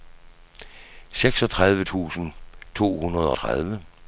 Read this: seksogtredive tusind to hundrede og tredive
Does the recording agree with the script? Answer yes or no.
no